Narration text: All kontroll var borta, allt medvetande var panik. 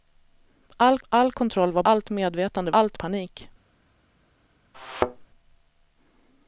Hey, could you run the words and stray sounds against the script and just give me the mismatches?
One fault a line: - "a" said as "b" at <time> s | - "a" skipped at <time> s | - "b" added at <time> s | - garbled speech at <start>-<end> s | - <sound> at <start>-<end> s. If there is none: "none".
- "all" added at 1.1 s
- "borta" skipped at 1.8 s
- "var" said as "allt" at 2.7 s
- thud at 4.7-5.3 s